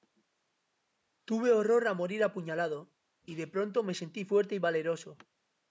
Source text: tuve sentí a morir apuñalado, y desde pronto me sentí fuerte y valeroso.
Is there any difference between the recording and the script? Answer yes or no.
yes